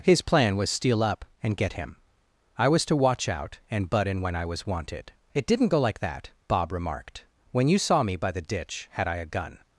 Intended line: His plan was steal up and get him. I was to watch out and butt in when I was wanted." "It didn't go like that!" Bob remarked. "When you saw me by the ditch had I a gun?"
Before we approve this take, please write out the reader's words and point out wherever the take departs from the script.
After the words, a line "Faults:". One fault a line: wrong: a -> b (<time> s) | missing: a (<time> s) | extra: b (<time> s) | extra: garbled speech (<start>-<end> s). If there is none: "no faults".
His plan was steal up and get him. I was to watch out and butt in when I was wanted." "It didn't go like that!" Bob remarked. "When you saw me by the ditch had I a gun?"
Faults:
no faults